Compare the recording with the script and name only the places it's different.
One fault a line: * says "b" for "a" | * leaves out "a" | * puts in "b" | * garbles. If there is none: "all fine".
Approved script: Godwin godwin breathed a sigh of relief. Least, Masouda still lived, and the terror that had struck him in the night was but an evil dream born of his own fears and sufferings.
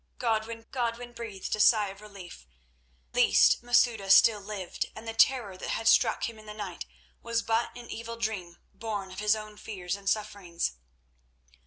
all fine